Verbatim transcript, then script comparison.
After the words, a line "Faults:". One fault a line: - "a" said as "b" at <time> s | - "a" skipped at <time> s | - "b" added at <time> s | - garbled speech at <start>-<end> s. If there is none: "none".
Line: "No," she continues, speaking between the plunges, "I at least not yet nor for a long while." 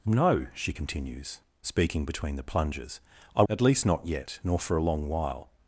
"No," she continues, speaking between the plunges, "I at least not yet nor for a long while."
Faults:
none